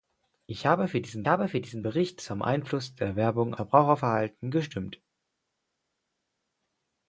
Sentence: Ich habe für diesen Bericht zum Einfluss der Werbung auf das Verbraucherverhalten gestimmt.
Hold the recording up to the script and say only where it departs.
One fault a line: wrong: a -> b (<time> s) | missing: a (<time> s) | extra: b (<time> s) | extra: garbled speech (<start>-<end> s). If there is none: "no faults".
extra: habe für diesen (1.3 s)
missing: auf das (3.5 s)